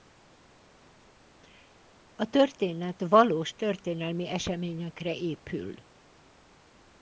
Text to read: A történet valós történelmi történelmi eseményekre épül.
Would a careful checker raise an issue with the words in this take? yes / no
yes